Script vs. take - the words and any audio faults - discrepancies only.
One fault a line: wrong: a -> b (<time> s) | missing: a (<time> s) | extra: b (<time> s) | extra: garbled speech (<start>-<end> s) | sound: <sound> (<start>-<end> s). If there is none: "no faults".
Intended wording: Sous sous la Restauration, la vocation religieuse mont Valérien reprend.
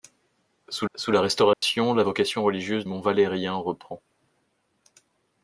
sound: dropout (1.5-1.6 s)